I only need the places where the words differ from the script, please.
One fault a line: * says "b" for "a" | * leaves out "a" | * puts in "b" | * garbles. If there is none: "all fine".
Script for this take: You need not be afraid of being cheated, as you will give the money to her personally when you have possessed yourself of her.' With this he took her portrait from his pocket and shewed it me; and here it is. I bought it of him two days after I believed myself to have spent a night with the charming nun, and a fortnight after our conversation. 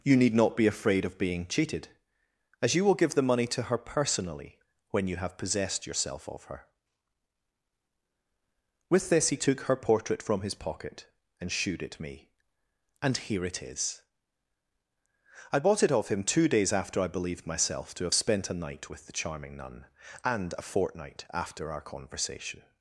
all fine